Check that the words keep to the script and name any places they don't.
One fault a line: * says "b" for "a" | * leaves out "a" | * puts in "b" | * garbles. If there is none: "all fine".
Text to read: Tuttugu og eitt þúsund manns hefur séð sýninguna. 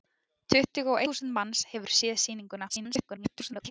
* leaves out "eitt"
* garbles